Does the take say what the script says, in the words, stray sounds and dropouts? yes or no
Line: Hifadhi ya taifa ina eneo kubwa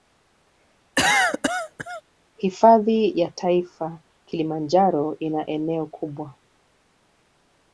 no